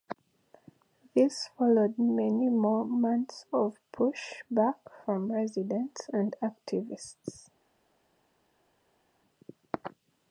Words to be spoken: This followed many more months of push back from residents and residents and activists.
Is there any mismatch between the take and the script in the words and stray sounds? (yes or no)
yes